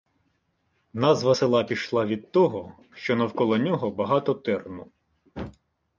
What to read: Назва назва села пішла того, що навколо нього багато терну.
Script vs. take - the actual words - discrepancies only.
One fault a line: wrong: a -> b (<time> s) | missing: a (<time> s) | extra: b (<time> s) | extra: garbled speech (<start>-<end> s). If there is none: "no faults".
missing: назва (1.4 s)
extra: від (2.0 s)